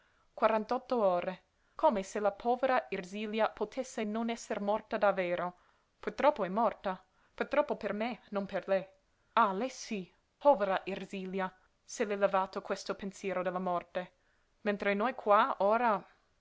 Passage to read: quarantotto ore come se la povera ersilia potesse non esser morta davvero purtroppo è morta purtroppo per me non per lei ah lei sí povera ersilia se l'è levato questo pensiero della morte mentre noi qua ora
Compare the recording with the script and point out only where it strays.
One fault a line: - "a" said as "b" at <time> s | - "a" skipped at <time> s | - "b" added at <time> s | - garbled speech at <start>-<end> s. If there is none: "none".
none